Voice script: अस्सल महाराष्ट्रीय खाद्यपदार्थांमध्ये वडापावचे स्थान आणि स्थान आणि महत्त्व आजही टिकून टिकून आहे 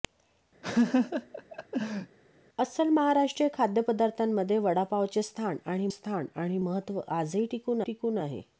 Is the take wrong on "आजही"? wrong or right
right